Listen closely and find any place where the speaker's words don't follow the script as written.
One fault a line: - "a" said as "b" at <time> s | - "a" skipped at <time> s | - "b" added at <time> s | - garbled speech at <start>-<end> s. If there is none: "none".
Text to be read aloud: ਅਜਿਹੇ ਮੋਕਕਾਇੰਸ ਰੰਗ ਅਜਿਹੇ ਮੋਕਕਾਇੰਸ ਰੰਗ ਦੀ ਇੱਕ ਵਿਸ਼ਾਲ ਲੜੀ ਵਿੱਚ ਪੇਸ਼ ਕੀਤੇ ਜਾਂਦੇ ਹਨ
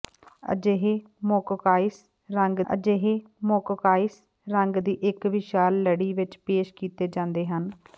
none